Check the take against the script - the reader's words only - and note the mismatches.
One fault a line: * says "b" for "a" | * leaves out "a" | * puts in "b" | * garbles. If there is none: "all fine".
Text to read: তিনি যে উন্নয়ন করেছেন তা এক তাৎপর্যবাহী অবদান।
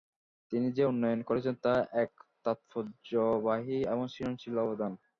* puts in "এবং সৃজনশীল"